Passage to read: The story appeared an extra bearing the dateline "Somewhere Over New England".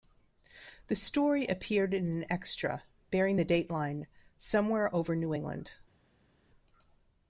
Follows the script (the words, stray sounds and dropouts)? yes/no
no